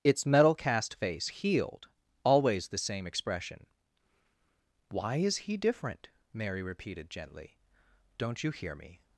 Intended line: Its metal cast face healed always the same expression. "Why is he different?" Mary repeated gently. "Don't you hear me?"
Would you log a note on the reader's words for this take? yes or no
no